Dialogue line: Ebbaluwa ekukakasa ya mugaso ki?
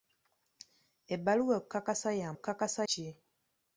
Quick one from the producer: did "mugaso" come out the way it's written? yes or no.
no